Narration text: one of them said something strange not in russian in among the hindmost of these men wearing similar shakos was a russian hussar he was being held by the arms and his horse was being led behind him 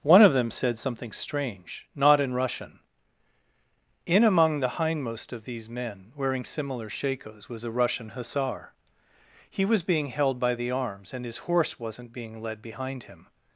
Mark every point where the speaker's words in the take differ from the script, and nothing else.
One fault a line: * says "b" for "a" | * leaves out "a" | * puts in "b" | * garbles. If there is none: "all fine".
* says "wasn't" for "was"